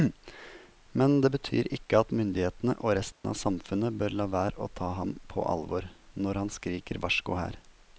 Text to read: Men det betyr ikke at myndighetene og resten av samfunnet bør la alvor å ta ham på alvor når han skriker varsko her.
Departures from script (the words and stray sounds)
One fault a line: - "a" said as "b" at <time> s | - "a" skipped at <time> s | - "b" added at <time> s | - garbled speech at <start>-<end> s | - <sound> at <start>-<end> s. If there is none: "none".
- dropout at 3.1-3.2 s
- "alvor" said as "være" at 4.3 s